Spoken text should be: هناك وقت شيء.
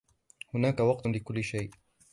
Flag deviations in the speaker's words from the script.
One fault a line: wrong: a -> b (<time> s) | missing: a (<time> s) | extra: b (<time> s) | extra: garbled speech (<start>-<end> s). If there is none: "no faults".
extra: لكل (1.1 s)